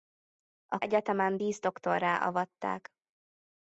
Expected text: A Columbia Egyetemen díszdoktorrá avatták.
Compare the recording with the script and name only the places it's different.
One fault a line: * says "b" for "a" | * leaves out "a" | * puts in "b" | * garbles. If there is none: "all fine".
* leaves out "Columbia"